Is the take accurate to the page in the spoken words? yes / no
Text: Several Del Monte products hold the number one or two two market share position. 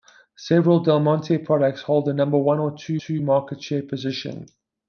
yes